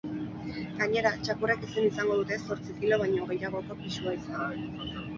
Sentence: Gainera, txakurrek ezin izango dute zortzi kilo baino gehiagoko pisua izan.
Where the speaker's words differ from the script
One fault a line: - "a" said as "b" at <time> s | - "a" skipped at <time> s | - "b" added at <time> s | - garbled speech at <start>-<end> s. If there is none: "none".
none